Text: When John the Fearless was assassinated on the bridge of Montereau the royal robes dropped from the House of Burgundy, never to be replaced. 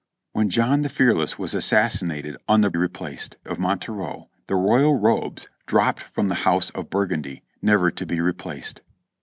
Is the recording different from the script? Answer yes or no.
yes